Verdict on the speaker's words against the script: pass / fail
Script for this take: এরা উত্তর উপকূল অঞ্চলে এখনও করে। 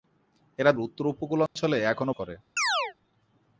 pass